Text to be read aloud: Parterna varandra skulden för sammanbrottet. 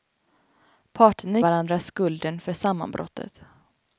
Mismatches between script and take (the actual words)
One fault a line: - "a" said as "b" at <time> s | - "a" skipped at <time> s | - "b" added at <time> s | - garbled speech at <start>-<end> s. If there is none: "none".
none